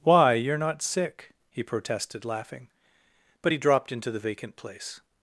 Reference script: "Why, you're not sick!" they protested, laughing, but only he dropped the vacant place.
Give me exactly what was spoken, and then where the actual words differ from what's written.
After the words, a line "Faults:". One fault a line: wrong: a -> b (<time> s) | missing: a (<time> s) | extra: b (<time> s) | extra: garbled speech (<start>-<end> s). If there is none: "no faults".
"Why, you're not sick!" he protested, laughing, but he dropped into the vacant place.
Faults:
wrong: they -> he (1.5 s)
missing: only (3.5 s)
extra: into (3.9 s)